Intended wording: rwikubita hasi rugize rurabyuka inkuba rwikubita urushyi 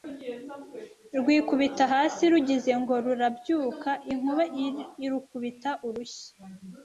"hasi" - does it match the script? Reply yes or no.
yes